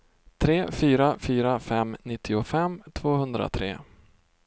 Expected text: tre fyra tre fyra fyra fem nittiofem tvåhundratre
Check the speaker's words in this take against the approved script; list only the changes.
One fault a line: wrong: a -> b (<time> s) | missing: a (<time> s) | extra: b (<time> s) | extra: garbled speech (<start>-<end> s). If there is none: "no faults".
missing: tre fyra (1.2 s)